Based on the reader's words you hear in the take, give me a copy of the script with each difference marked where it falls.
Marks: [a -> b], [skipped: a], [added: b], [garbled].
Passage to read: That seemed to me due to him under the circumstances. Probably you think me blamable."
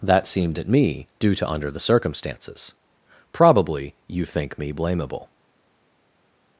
That seemed [to -> at] me due to [skipped: him] under the circumstances. Probably you think me blamable."